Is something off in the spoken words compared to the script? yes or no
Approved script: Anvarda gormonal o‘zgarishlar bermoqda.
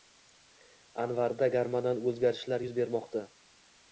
yes